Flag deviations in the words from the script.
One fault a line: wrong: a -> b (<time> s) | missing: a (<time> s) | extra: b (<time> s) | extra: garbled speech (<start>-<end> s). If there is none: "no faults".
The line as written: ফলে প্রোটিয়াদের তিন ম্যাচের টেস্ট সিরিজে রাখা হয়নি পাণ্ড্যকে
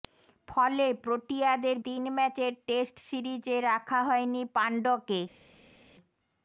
no faults